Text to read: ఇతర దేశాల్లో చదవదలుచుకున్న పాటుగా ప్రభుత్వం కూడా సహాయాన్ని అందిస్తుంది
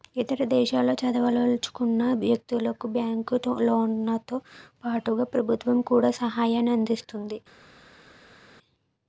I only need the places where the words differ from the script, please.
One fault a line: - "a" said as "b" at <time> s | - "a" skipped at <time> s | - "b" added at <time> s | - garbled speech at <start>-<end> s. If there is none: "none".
- "వ్యక్తులకు బ్యాంకు లోన్లతో" added at 2.1 s